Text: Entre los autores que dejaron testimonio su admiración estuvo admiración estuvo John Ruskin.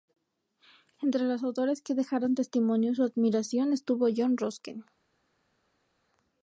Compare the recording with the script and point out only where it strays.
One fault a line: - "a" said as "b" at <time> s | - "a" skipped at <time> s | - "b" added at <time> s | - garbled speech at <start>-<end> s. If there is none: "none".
- "admiración estuvo" skipped at 4.1 s